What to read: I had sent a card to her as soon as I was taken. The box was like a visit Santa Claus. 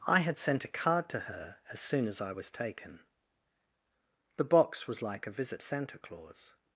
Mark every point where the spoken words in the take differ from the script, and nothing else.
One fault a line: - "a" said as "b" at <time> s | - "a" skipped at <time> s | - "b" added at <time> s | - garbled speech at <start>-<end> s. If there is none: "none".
none